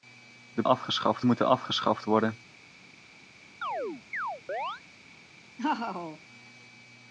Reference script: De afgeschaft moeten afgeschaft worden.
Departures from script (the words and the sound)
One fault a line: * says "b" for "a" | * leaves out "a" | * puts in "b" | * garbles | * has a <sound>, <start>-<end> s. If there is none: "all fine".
* has a chirp, 3.6-4.8 s
* has a laugh, 5.6-6.2 s